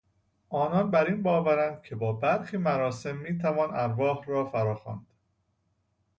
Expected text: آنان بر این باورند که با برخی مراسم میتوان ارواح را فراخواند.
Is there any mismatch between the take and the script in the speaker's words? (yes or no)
no